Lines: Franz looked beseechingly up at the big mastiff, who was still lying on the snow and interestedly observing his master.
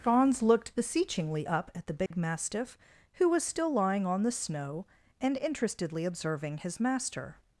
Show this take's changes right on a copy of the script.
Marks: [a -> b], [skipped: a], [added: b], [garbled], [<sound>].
Franz looked beseechingly up at the big [dropout] mastiff, who was still lying on the snow and interestedly observing his master.